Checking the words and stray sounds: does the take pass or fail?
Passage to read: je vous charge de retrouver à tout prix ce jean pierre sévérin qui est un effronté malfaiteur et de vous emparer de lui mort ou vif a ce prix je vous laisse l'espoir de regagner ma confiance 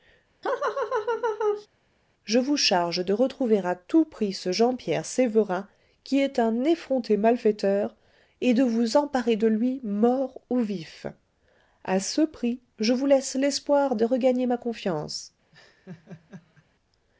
fail